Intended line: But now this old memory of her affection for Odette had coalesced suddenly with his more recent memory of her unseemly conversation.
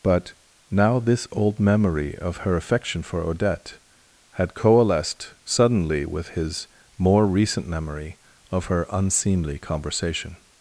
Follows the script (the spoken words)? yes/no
yes